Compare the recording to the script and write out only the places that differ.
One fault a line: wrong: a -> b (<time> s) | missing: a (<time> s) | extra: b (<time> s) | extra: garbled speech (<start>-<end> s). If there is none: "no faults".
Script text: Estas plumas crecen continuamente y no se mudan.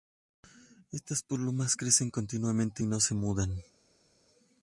no faults